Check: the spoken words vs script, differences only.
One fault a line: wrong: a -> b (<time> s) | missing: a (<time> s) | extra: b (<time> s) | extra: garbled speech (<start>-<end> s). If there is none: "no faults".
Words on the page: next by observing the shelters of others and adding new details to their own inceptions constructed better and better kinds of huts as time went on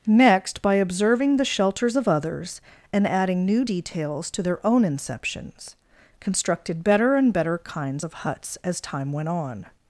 no faults